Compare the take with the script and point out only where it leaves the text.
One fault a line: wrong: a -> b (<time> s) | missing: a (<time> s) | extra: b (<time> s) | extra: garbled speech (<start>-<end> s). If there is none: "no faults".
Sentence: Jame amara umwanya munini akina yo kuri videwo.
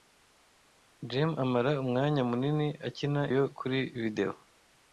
no faults